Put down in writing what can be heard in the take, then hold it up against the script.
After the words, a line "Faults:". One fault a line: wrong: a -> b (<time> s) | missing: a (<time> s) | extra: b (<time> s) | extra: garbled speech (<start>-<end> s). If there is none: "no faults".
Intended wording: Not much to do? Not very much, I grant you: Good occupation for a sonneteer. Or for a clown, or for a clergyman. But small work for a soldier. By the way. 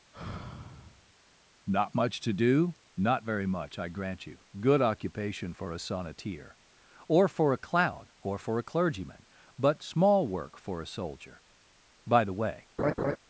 Not much to do? Not very much, I grant you: Good occupation for a sonneteer. Or for a clown, or for a clergyman. But small work for a soldier. By the way.
Faults:
no faults